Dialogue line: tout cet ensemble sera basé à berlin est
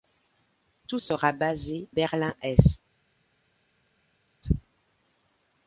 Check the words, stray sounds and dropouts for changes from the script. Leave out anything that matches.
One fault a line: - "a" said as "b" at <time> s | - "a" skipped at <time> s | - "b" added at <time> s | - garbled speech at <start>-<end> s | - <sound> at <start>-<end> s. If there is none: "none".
- "cet ensemble" skipped at 1.0 s
- "à" skipped at 1.9 s